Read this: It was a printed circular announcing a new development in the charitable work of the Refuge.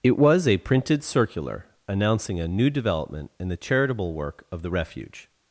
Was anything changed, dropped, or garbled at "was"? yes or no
no